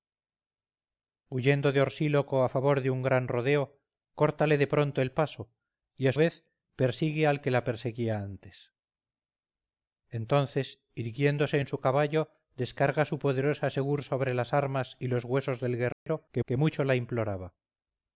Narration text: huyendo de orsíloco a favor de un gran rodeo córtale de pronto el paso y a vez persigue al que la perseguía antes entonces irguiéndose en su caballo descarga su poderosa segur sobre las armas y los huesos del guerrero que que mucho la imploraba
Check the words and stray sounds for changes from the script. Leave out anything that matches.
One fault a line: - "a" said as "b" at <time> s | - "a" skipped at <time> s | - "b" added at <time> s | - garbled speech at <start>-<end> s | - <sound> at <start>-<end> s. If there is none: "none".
- dropout at 15.9-16.1 s